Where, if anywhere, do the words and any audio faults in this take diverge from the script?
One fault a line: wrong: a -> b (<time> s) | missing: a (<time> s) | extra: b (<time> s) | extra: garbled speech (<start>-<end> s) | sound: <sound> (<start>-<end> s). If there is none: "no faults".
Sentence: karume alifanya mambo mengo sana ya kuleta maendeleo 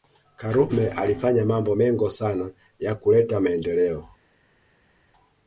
no faults